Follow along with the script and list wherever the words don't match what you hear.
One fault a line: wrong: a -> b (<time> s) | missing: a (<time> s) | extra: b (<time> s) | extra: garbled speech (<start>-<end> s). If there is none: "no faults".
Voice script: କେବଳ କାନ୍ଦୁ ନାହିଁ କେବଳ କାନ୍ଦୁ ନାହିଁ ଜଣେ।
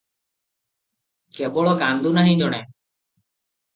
missing: କେବଳ କାନ୍ଦୁ ନାହିଁ (2.4 s)